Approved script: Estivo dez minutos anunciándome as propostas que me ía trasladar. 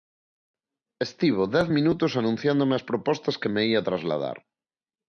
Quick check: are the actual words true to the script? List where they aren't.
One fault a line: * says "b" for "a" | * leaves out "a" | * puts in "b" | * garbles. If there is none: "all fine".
all fine